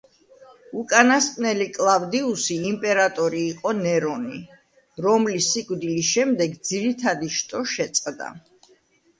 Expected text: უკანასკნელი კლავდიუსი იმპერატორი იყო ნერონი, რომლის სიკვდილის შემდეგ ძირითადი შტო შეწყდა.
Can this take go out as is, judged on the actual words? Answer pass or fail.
pass